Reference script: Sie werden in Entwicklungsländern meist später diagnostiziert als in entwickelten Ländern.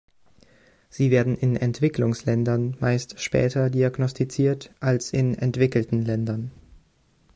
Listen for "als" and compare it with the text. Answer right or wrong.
right